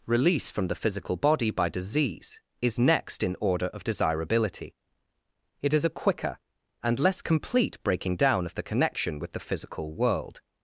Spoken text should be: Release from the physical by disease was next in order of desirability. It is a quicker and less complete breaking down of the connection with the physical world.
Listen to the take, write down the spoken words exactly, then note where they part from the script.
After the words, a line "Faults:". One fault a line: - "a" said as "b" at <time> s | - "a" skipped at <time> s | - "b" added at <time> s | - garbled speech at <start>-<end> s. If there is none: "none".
Release from the physical body by disease is next in order of desirability. It is a quicker and less complete breaking down of the connection with the physical world.
Faults:
- "body" added at 1.1 s
- "was" said as "is" at 2.6 s